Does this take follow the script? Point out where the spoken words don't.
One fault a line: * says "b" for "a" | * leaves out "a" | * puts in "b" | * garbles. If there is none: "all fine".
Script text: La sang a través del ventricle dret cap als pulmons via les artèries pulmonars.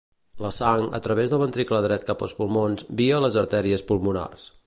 all fine